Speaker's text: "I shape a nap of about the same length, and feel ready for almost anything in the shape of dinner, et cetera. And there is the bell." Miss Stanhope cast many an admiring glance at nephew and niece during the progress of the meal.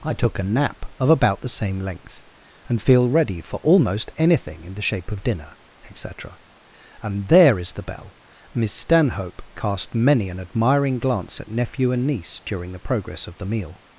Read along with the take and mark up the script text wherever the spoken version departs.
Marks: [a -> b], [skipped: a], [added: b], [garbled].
"I [shape -> took] a nap of about the same length, and feel ready for almost anything in the shape of dinner, et cetera. And there is the bell." Miss Stanhope cast many an admiring glance at nephew and niece during the progress of the meal.